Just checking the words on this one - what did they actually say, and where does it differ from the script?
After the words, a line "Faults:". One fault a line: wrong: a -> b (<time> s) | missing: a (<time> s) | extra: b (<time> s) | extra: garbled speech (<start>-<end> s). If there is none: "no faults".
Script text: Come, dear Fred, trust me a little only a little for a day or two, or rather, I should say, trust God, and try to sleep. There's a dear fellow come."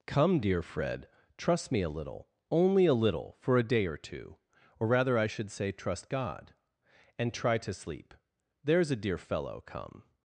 Come, dear Fred, trust me a little only a little for a day or two, or rather, I should say, trust God, and try to sleep. There's a dear fellow come."
Faults:
no faults